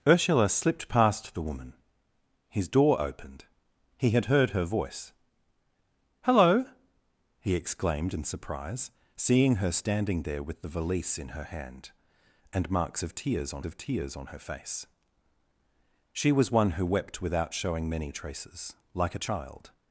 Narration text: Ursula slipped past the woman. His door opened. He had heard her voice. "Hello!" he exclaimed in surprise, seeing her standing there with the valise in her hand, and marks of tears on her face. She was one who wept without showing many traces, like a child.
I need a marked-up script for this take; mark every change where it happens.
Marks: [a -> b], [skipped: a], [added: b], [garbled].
Ursula slipped past the woman. His door opened. He had heard her voice. "Hello!" he exclaimed in surprise, seeing her standing there with the valise in her hand, and marks of tears on [added: of tears on] her face. She was one who wept without showing many traces, like a child.